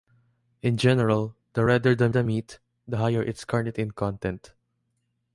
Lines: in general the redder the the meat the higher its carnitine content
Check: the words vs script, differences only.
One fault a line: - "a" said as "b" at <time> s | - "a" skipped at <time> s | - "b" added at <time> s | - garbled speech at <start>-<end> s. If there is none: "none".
none